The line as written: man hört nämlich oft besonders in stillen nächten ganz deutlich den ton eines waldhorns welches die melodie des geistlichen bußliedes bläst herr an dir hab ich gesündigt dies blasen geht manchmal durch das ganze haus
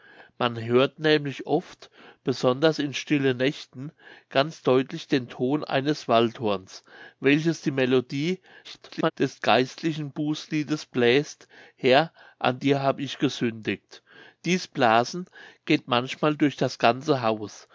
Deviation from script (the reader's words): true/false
true